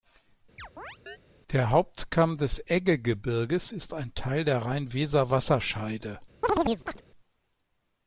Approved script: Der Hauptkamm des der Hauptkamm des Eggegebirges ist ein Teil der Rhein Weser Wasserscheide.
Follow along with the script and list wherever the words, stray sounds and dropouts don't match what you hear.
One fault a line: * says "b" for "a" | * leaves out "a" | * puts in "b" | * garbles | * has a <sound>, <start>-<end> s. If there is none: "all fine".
* has a chirp, 0.6-1.2 s
* leaves out "der Hauptkamm des"
* has a chirp, 6.4-7.0 s